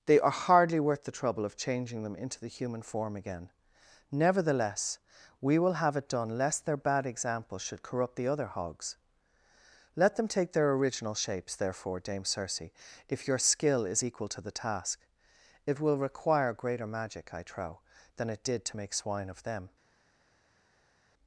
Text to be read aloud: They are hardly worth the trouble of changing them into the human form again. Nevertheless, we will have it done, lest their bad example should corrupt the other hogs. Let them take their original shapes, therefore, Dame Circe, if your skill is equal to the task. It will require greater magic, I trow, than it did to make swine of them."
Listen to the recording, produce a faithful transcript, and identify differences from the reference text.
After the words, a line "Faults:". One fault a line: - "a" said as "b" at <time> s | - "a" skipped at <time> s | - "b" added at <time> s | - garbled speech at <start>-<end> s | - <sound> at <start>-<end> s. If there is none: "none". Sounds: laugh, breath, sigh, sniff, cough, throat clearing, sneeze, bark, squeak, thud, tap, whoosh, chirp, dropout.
They are hardly worth the trouble of changing them into the human form again. Nevertheless, we will have it done, lest their bad example should corrupt the other hogs. Let them take their original shapes, therefore, Dame Circe, if your skill is equal to the task. It will require greater magic, I trow, than it did to make swine of them."
Faults:
none